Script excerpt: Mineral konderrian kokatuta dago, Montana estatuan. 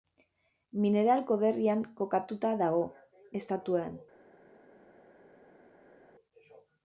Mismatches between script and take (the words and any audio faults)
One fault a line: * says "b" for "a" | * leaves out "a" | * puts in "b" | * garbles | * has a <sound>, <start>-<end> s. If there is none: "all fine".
* leaves out "Montana"